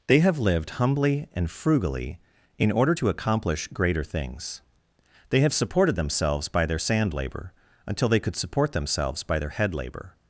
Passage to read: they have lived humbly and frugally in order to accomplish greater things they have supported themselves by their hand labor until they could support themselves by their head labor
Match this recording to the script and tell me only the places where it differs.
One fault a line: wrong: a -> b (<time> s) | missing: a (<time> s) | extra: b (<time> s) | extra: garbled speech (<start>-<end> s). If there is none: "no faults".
wrong: hand -> sand (6.8 s)